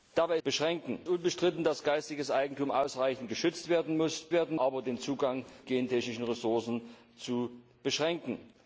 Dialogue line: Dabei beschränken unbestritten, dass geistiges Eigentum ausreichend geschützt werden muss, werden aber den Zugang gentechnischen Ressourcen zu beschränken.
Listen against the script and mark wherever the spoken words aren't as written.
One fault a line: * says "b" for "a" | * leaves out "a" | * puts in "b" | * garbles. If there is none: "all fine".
all fine